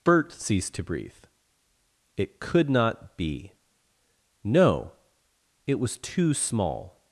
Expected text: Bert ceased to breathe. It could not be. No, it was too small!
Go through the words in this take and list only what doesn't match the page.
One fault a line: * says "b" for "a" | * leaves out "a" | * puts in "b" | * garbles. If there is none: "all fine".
all fine